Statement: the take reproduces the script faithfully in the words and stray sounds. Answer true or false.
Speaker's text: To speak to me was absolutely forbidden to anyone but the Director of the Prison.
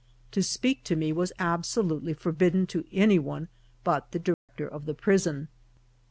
false